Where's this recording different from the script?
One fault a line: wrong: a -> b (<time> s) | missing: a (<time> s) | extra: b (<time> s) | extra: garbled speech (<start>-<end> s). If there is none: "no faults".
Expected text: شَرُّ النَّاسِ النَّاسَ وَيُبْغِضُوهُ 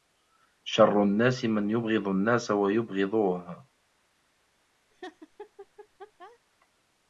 extra: مَنْ يُبْغِضُ (1.4 s)